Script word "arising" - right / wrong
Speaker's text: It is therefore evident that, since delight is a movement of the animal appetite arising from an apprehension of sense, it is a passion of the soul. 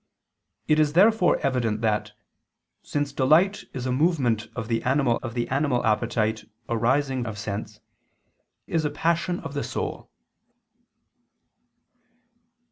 wrong